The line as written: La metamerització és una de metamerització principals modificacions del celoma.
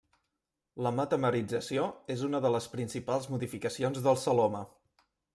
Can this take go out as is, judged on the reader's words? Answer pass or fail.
fail